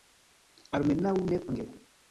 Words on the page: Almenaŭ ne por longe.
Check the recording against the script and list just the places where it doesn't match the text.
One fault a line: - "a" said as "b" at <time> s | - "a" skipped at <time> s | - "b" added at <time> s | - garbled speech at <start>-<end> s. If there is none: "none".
- "por" skipped at 1.4 s